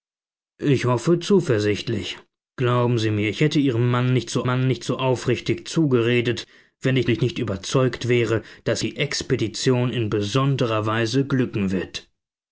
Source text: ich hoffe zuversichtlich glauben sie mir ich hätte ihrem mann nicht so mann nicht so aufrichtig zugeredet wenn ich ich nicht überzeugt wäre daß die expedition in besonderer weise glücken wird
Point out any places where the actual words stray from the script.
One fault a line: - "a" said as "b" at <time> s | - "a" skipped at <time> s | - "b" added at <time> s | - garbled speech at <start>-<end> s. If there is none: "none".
none